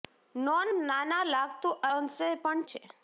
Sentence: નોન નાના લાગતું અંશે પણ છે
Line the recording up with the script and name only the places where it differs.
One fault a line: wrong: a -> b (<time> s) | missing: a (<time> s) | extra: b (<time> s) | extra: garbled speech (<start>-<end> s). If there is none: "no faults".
no faults